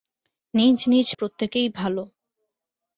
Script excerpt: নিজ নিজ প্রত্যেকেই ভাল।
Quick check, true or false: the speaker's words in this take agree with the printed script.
true